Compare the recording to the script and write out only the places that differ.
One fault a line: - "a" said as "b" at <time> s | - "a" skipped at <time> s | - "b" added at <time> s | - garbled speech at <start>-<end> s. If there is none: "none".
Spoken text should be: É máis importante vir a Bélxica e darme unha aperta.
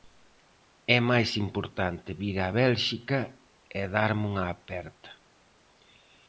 none